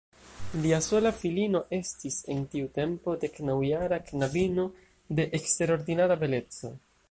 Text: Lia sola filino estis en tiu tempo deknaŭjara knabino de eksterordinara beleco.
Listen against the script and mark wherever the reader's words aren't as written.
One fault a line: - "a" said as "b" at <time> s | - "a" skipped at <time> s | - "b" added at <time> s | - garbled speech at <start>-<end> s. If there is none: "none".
none